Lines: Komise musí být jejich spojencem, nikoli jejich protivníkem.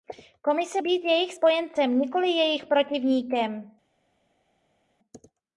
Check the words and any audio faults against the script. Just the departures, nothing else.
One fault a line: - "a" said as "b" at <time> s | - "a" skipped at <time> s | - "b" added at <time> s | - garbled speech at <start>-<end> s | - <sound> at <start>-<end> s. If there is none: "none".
- "musí" skipped at 0.8 s